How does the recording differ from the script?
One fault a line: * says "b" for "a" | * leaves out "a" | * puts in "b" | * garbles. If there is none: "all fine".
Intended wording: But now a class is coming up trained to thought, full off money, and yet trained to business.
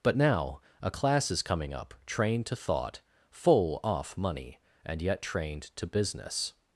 all fine